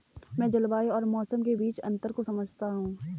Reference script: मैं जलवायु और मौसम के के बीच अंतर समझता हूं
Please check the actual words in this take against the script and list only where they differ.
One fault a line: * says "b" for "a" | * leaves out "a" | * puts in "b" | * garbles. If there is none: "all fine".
* leaves out "के"
* puts in "को"